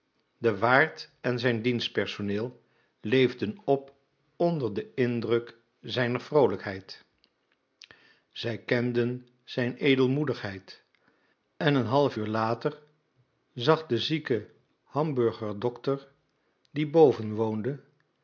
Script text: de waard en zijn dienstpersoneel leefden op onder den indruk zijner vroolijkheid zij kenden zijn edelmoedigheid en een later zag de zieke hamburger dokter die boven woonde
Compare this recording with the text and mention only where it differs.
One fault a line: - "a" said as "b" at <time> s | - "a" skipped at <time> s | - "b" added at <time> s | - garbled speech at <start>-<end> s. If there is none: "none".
- "half uur" added at 11.8 s